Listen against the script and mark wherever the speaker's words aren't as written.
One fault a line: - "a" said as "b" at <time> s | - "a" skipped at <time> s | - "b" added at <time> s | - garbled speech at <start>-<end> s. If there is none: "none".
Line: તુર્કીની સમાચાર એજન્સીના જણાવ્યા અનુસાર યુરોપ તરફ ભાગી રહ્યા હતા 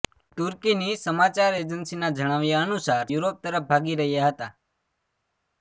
none